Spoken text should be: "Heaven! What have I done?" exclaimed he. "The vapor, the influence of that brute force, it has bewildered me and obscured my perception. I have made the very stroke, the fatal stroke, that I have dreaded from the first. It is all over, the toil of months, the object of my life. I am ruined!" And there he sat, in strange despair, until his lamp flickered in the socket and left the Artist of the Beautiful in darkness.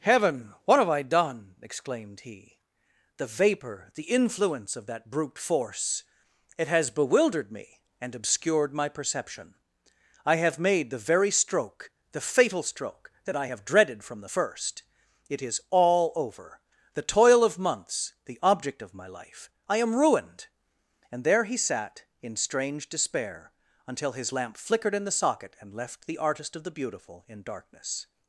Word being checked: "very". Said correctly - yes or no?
yes